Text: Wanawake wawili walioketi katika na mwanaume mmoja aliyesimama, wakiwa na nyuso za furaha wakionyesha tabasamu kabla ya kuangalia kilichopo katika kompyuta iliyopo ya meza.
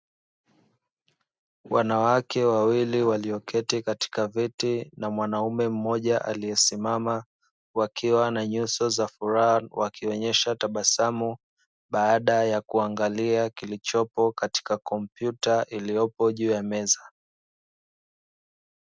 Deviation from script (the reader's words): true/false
true